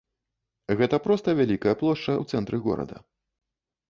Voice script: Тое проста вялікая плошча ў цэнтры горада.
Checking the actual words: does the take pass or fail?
fail